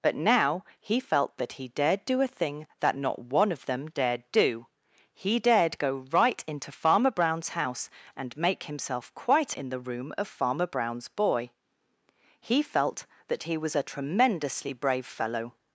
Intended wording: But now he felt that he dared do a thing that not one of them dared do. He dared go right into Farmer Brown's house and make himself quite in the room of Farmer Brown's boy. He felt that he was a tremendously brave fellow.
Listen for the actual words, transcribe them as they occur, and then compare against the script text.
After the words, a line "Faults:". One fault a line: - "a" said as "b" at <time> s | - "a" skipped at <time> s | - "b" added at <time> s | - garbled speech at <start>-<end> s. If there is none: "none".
But now he felt that he dared do a thing that not one of them dared do. He dared go right into Farmer Brown's house and make himself quite in the room of Farmer Brown's boy. He felt that he was a tremendously brave fellow.
Faults:
none